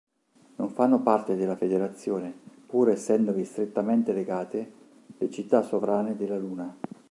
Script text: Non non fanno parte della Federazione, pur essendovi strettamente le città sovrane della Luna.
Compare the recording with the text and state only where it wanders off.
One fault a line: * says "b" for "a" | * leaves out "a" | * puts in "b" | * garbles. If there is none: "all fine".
* leaves out "non"
* puts in "legate"